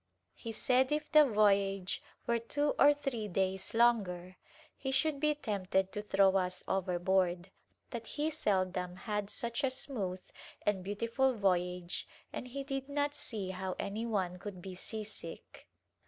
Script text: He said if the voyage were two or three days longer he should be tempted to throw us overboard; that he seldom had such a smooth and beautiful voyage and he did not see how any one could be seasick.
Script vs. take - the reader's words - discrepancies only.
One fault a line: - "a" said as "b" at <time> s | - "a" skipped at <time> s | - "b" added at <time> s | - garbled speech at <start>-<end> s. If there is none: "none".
none